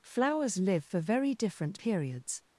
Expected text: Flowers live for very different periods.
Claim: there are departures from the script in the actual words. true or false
false